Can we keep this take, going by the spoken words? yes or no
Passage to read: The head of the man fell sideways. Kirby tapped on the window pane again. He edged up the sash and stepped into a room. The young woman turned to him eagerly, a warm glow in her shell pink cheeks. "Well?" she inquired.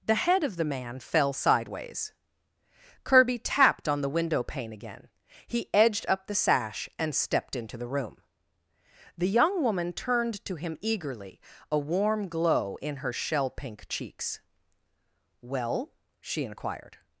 no